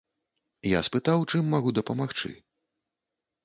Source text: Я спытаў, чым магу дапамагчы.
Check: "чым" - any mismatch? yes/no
no